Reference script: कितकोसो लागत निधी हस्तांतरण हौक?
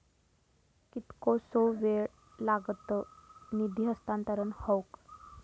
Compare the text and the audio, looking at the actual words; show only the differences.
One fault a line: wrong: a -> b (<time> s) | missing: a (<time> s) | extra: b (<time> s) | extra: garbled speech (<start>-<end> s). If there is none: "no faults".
extra: वेळ (1.8 s)